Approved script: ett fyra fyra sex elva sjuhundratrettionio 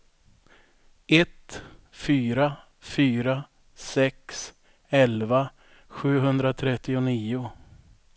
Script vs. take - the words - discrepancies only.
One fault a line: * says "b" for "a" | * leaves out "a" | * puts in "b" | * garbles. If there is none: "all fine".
all fine